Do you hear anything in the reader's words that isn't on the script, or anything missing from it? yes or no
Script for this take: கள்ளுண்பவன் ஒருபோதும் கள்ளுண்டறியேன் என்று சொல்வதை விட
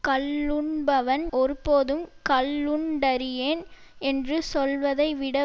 no